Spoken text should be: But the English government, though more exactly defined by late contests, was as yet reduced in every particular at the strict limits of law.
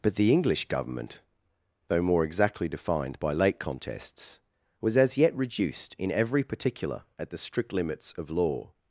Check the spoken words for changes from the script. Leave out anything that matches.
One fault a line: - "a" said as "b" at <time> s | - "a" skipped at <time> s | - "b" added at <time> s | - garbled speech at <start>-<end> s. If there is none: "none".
none